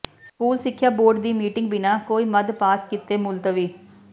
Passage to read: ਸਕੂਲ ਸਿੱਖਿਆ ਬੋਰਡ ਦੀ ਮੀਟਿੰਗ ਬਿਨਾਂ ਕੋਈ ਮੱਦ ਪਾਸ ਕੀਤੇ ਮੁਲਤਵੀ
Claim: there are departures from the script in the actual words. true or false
false